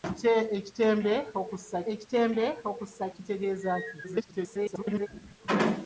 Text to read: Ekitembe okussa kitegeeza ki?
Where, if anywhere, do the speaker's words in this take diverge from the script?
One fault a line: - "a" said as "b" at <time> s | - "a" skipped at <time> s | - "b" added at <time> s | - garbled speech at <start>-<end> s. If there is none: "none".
- "ekitembe okussa" added at 1.9 s
- garbled speech at 4.0-5.1 s